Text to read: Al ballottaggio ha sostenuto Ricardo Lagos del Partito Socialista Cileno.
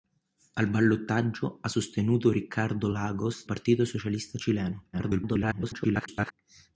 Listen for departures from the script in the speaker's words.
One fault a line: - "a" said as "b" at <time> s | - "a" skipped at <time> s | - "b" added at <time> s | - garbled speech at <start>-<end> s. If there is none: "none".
- "del" skipped at 3.5 s
- garbled speech at 4.9-6.3 s